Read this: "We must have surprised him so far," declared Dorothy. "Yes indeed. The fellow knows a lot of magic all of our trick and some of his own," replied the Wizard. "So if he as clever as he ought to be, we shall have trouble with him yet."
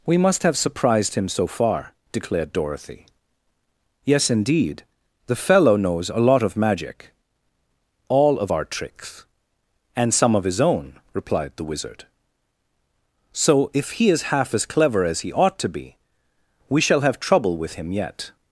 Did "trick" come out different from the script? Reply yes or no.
yes